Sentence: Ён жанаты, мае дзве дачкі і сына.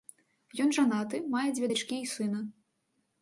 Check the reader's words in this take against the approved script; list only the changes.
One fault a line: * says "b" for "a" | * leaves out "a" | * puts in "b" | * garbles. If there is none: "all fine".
all fine